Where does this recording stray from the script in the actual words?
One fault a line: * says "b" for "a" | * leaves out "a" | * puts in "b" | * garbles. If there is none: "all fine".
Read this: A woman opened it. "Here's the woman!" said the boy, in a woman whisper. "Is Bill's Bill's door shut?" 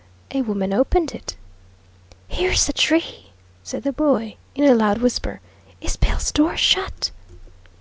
* says "tree" for "woman"
* says "loud" for "woman"
* leaves out "Bill's"